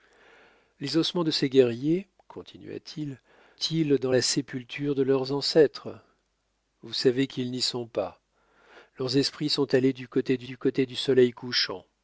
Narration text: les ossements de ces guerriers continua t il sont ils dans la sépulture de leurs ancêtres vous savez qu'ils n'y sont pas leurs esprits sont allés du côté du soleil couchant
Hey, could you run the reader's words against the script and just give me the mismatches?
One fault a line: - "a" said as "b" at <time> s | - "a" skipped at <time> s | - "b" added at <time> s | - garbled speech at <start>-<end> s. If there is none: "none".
- "sont" skipped at 3.2 s
- "du côté du" added at 10.4 s